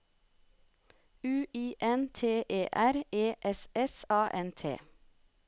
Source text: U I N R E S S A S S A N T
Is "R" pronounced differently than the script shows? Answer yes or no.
yes